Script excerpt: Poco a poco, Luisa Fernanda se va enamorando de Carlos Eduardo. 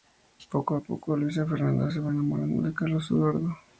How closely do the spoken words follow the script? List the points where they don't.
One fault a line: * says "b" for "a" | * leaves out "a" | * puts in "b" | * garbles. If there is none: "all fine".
all fine